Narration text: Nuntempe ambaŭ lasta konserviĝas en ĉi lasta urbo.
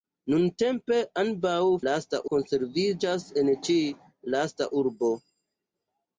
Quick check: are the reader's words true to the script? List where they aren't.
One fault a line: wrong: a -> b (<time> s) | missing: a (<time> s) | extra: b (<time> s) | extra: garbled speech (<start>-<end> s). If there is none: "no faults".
no faults